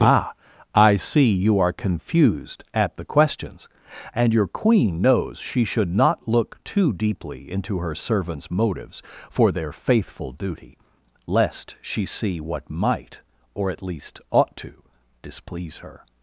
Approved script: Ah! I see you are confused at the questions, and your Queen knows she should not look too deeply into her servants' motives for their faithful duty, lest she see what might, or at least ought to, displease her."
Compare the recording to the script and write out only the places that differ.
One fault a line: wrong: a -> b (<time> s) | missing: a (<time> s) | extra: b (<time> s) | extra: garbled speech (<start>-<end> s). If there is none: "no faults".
no faults